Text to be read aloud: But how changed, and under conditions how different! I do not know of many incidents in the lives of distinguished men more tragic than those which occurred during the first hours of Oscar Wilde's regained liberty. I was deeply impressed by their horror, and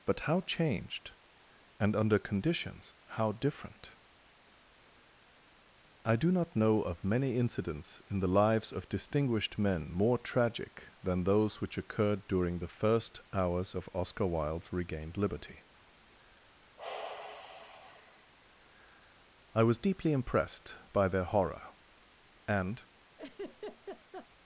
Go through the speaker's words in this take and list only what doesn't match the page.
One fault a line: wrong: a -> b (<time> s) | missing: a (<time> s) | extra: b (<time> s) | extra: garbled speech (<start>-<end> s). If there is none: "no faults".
no faults